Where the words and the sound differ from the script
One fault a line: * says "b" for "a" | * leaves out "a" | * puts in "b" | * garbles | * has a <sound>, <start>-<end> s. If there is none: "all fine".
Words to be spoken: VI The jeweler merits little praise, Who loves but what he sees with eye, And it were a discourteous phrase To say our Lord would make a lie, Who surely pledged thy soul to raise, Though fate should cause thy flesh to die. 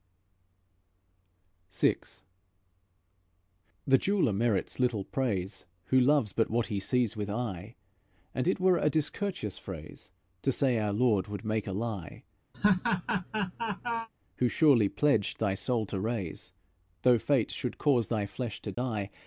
* has a laugh, 12.5-14.1 s
* has a dropout, 18.7-18.8 s